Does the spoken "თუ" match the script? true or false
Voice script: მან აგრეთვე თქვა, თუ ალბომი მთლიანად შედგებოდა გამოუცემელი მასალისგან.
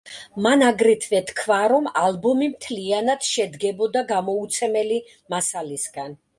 false